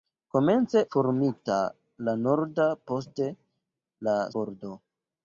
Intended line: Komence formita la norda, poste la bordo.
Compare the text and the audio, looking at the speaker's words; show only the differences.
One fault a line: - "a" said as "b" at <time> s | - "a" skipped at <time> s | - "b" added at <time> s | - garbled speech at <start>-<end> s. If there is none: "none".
none